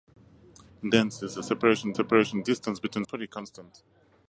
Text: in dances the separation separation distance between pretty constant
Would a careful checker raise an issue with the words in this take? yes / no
no